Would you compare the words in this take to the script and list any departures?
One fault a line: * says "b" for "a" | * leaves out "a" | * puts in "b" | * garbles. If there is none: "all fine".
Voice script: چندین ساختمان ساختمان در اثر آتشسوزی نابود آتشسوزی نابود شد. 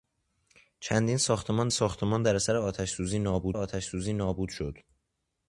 all fine